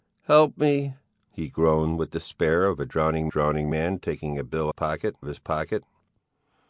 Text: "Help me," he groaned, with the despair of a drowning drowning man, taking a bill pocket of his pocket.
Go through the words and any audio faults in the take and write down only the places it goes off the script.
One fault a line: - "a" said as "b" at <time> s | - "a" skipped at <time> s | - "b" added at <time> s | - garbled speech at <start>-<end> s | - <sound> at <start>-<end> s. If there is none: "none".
none